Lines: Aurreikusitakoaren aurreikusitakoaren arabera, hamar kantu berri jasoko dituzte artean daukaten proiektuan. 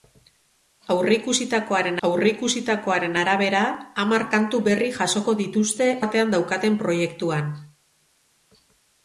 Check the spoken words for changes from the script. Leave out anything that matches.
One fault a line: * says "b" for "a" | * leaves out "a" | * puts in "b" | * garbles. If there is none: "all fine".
all fine